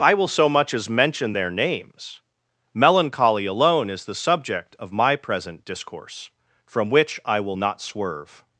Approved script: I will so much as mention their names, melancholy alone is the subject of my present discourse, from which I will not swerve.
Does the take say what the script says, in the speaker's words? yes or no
yes